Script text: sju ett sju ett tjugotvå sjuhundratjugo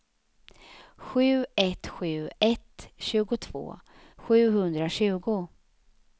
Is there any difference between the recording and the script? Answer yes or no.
no